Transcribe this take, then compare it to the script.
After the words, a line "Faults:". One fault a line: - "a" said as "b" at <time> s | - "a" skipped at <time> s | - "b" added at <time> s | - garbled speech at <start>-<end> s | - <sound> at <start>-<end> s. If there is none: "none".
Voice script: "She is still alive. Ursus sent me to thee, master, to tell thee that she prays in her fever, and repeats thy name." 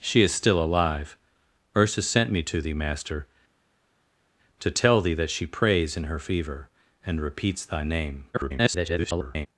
"She is still alive. Ursus sent me to thee, master, to tell thee that she prays in her fever, and repeats thy name." [garbled]
Faults:
- garbled speech at 8.3-9.5 s